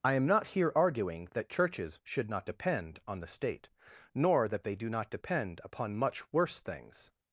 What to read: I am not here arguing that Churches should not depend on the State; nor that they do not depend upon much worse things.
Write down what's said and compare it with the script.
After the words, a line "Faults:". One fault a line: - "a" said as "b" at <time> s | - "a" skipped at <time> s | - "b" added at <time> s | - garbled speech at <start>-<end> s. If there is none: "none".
I am not here arguing that Churches should not depend on the State; nor that they do not depend upon much worse things.
Faults:
none